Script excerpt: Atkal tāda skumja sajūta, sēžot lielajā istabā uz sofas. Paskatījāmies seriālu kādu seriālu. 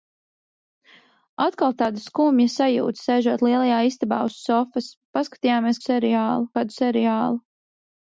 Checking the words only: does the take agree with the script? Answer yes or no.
yes